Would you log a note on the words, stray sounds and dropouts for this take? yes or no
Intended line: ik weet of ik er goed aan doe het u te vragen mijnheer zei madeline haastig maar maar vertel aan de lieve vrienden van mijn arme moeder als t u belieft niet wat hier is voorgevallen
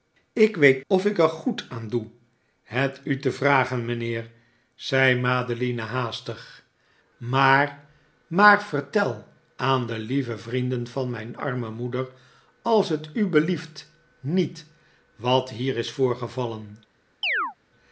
yes